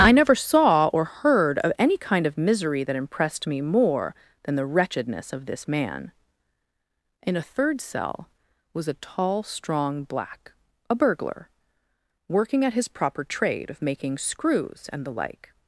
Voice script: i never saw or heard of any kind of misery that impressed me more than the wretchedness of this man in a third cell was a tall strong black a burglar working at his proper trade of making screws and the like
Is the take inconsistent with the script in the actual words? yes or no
no